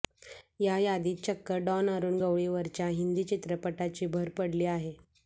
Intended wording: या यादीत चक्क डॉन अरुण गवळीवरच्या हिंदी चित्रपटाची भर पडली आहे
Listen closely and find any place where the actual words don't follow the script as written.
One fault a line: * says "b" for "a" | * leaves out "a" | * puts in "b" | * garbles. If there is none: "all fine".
all fine